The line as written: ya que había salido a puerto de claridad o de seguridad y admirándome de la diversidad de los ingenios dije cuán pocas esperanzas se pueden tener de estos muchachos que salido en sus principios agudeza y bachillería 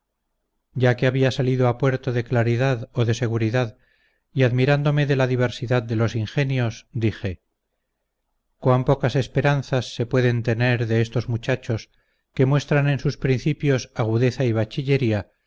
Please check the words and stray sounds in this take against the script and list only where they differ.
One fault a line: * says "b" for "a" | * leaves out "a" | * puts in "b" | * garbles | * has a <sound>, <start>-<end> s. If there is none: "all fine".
* says "muestran" for "salido"